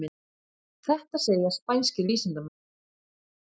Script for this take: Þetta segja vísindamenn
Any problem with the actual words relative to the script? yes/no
yes